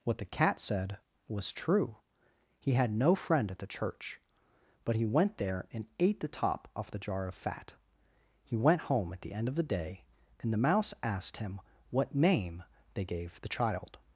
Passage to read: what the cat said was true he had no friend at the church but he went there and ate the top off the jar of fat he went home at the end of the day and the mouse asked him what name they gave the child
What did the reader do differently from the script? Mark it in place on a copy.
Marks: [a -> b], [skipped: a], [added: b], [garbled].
what the cat said was true he had no friend at the church but he went there and ate the top off the jar of fat he went home at the end of the day and the mouse asked him what name they gave the child